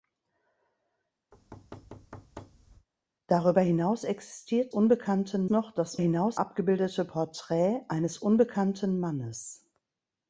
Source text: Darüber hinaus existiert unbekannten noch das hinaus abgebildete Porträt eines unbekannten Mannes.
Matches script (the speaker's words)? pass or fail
pass